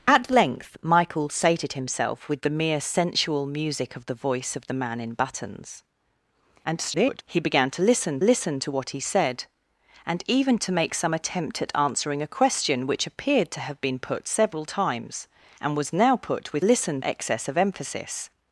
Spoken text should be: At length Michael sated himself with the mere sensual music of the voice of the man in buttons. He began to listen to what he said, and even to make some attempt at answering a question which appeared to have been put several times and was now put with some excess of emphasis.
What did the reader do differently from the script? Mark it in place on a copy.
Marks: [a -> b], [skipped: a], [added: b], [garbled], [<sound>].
At length Michael sated himself with the mere sensual music of the voice of the man in buttons. [garbled] He began to listen [added: listen] to what he said, and even to make some attempt at answering a question which appeared to have been put several times and was now put with [some -> listen] excess of emphasis.